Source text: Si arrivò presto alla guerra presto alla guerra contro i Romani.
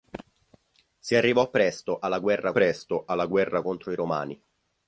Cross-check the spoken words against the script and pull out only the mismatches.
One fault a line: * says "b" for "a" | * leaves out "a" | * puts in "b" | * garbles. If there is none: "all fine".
all fine